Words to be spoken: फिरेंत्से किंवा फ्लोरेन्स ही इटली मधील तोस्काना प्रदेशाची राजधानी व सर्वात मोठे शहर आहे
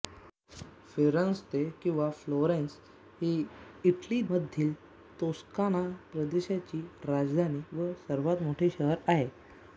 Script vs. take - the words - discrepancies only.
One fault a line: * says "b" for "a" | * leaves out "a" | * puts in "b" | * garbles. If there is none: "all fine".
all fine